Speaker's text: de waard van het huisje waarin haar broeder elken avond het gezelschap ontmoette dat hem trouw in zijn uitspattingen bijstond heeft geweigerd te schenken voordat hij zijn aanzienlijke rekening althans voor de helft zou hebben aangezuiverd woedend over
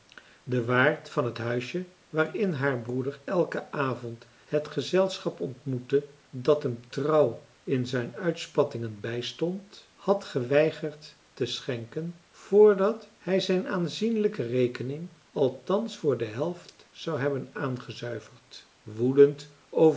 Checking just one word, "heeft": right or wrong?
wrong